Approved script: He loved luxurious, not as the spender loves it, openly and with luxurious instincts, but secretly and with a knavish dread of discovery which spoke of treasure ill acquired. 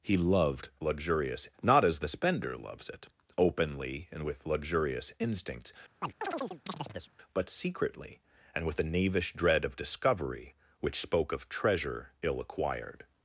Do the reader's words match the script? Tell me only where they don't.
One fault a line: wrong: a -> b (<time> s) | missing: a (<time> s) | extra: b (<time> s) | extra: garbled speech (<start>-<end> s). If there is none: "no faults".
no faults